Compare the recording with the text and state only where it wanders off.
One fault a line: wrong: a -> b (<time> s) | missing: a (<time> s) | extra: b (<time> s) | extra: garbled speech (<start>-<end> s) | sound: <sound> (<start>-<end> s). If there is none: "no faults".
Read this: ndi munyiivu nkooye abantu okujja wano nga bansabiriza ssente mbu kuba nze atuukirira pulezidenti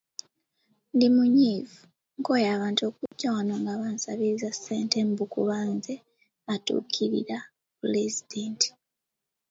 sound: dropout (3.1-3.1 s)